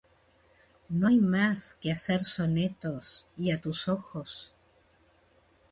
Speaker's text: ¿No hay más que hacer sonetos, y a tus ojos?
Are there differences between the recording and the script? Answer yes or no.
no